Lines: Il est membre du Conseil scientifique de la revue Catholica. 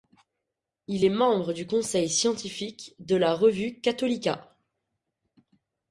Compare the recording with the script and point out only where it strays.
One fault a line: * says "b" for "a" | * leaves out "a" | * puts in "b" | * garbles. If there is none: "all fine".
all fine